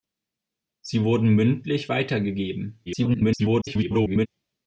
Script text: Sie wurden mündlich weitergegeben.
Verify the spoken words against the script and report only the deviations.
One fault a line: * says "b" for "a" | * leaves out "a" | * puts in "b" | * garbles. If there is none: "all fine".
* garbles